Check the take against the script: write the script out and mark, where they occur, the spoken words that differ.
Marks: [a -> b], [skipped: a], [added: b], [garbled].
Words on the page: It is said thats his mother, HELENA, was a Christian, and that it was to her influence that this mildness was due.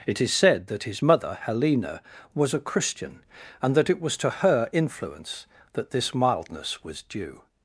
It is said [thats -> that] his mother, HELENA, was a Christian, and that it was to her influence that this mildness was due.